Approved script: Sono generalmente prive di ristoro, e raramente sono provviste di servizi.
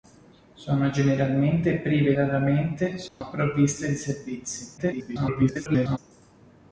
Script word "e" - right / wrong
wrong